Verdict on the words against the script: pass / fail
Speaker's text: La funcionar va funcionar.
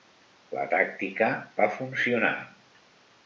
fail